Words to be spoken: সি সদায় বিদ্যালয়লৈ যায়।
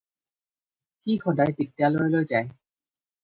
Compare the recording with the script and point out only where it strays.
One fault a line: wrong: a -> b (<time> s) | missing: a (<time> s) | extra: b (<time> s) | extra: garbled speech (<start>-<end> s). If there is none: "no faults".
no faults